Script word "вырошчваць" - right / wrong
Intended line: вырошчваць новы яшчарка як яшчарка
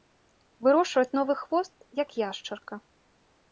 right